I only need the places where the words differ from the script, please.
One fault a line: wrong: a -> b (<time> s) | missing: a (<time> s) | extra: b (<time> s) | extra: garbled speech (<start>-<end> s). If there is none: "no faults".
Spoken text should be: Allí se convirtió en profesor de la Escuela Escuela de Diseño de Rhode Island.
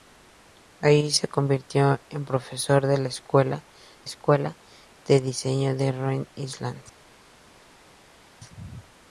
no faults